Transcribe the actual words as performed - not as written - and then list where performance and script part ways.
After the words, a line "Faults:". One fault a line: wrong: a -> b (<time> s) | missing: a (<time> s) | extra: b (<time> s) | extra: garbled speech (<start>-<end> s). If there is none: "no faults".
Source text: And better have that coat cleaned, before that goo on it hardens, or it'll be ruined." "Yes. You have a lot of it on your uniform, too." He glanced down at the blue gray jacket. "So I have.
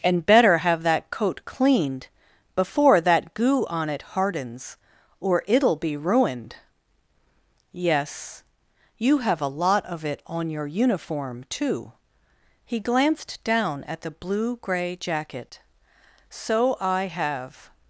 And better have that coat cleaned, before that goo on it hardens, or it'll be ruined." "Yes. You have a lot of it on your uniform, too." He glanced down at the blue gray jacket. "So I have.
Faults:
no faults